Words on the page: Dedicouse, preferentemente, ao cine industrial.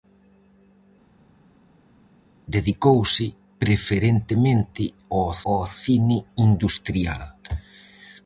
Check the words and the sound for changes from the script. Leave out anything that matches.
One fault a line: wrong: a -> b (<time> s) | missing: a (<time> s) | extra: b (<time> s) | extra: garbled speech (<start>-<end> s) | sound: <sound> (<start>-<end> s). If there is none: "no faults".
extra: ao (5.5 s)